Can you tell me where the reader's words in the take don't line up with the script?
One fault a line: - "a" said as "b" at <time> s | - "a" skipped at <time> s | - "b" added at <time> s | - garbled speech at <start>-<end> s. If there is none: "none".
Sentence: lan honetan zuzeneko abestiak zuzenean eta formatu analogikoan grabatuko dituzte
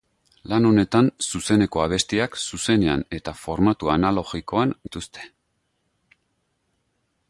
- "grabatuko" skipped at 4.8 s